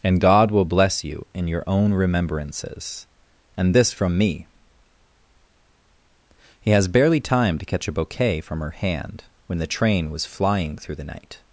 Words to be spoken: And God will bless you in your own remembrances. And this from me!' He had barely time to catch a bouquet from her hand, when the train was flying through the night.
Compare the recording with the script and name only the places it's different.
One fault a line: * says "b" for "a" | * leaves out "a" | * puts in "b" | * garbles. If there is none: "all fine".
* says "has" for "had"